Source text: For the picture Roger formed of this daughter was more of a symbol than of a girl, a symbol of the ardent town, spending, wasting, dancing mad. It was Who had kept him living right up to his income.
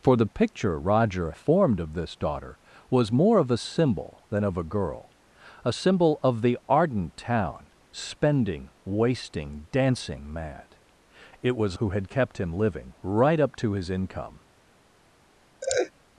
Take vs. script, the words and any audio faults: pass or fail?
fail